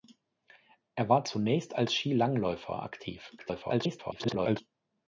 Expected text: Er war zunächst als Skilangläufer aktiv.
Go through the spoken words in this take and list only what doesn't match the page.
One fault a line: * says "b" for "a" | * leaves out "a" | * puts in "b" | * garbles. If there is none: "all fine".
* garbles